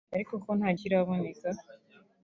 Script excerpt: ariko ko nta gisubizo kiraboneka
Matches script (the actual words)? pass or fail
fail